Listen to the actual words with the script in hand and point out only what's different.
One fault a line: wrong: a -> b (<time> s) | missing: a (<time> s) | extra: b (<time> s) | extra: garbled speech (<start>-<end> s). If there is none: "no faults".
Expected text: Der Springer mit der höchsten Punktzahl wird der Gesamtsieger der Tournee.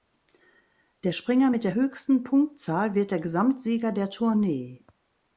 no faults